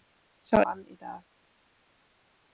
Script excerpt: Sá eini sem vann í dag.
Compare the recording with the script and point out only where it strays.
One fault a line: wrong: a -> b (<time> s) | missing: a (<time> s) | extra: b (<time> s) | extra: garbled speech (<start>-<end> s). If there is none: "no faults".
missing: eini sem (0.6 s)